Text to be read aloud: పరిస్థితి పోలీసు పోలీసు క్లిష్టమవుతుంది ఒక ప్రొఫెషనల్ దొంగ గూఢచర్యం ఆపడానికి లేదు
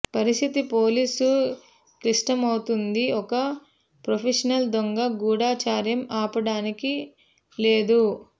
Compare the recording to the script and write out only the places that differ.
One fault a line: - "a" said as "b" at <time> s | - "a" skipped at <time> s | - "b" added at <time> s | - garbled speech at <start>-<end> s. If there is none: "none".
- "పోలీసు" skipped at 1.3 s